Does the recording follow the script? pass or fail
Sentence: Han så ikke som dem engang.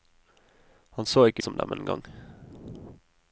pass